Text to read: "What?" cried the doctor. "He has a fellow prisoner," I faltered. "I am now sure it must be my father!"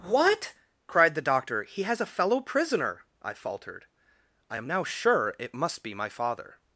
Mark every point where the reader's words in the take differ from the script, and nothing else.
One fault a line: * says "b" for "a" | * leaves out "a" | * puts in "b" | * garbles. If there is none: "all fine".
all fine